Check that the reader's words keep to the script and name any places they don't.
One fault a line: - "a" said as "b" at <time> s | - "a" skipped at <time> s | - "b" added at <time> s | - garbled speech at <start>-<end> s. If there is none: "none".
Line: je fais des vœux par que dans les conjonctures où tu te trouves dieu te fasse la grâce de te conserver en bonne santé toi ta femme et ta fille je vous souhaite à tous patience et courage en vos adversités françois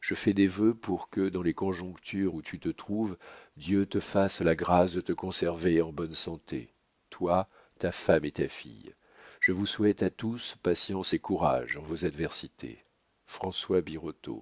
- "par" said as "pour" at 0.7 s